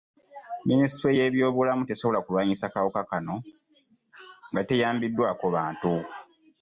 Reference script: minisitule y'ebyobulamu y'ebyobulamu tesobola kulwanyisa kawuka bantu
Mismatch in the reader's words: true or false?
true